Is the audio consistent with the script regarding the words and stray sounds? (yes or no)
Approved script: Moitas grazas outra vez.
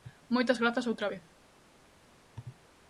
yes